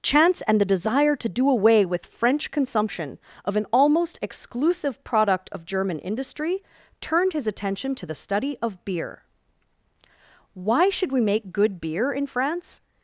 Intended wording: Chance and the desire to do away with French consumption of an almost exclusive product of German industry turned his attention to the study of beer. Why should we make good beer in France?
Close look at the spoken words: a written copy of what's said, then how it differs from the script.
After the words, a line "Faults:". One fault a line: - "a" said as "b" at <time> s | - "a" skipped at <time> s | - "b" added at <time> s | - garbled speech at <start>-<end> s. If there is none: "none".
Chance and the desire to do away with French consumption of an almost exclusive product of German industry turned his attention to the study of beer. Why should we make good beer in France?
Faults:
none